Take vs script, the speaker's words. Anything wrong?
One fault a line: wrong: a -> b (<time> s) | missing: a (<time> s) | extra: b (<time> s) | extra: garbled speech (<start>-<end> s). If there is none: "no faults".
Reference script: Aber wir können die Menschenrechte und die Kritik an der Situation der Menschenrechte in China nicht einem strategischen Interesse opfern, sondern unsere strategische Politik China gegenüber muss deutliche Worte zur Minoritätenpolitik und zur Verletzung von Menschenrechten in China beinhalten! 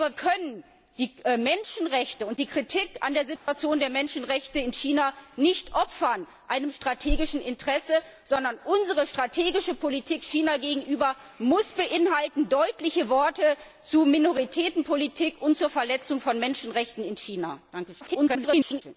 missing: wir (0.1 s)
extra: garbled speech (18.0-18.8 s)